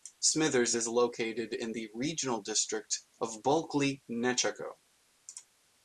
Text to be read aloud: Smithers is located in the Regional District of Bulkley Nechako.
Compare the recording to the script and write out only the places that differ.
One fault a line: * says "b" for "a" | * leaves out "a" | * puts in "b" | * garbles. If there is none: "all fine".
all fine